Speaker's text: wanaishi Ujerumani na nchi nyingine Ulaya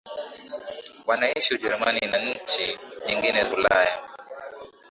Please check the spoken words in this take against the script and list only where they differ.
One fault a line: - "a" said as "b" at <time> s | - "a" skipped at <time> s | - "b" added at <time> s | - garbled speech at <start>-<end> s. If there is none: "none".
none